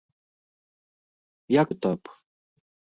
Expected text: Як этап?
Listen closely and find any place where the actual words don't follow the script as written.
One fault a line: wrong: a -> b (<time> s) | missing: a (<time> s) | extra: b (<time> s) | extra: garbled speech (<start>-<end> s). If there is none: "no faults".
no faults